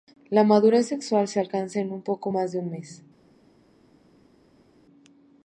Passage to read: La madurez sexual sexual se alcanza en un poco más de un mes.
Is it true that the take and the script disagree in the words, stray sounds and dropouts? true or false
true